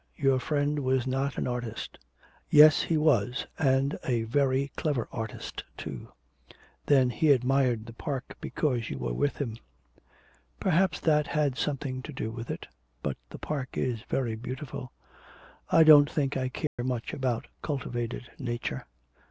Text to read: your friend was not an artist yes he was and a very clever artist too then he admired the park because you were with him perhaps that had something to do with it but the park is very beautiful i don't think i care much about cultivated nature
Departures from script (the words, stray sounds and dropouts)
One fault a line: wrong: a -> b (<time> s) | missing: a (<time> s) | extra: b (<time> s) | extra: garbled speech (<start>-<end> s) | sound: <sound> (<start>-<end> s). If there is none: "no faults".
sound: dropout (16.7-16.8 s)